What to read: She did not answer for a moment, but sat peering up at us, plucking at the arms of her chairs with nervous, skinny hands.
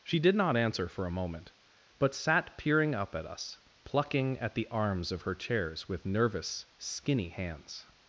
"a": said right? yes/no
yes